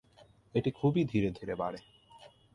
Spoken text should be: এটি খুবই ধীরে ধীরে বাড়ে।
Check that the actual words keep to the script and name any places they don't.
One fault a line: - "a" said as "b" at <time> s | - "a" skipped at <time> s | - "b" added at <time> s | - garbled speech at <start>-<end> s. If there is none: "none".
none